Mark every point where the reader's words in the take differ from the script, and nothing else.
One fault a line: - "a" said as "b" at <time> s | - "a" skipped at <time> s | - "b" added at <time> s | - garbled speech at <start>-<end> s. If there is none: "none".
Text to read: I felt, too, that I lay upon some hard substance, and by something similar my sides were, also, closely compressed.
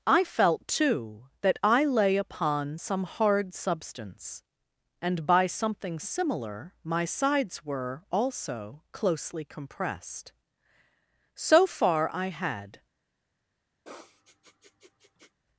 - "So far I had" added at 11.3 s